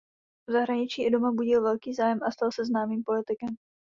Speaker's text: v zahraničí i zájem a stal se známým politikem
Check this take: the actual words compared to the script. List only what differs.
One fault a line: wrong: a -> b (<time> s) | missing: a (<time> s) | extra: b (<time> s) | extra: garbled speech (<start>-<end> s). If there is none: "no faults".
extra: doma budil velký (1.1 s)